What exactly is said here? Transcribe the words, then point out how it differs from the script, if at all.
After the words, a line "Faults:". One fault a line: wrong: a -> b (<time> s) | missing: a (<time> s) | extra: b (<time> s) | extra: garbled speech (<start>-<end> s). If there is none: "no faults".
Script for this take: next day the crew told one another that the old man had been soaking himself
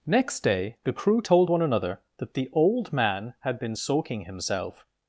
next day the crew told one another that the old man had been soaking himself
Faults:
no faults